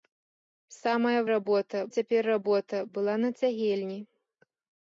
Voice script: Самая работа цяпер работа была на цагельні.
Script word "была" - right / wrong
right